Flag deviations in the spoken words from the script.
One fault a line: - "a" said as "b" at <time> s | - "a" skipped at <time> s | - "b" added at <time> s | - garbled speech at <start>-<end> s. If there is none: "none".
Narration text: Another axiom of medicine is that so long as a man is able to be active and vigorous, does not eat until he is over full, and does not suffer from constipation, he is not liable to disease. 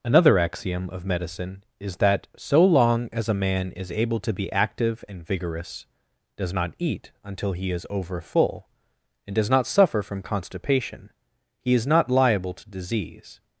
none